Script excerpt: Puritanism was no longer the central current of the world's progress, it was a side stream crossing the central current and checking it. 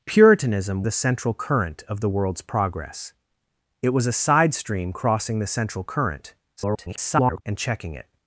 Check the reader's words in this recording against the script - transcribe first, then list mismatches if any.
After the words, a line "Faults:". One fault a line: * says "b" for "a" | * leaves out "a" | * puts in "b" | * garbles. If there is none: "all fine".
Puritanism the central current of the world's progress, it was a side stream crossing the central current [garbled] and checking it.
Faults:
* leaves out "was no longer"
* garbles